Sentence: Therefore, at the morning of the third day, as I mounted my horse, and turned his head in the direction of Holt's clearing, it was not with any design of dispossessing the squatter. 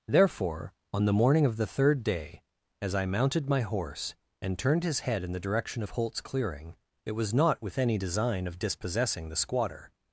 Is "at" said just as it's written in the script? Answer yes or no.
no